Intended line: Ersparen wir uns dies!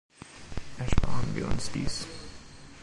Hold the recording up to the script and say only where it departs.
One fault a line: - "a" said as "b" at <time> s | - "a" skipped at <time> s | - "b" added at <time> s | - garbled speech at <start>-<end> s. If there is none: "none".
none